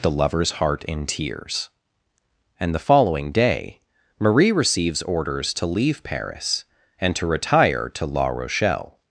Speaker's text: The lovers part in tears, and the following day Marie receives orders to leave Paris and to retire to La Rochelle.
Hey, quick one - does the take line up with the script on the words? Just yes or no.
no